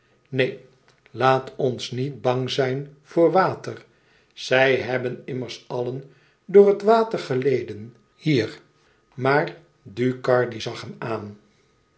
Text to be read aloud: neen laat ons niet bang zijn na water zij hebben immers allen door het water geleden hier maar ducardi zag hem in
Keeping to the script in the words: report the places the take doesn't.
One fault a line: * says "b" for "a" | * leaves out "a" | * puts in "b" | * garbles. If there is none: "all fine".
* says "voor" for "na"
* says "aan" for "in"